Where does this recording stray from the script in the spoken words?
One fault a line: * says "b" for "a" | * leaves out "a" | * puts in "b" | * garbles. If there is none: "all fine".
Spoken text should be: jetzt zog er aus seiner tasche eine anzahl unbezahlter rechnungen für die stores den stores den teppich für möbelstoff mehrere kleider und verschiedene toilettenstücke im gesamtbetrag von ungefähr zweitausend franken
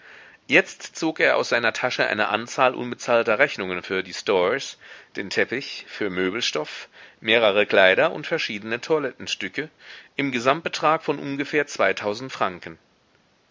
* leaves out "stores den"